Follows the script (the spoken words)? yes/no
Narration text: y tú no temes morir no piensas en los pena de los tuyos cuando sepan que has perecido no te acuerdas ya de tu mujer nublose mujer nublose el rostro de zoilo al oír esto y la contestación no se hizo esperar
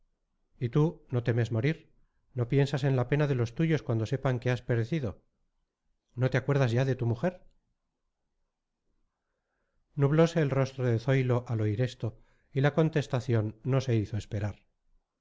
no